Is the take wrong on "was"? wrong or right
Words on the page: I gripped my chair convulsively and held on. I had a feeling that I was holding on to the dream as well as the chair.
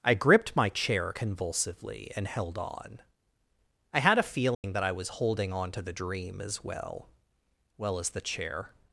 right